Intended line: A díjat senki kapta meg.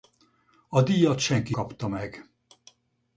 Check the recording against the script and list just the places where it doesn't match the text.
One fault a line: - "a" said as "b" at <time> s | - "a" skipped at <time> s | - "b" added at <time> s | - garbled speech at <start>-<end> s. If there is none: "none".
none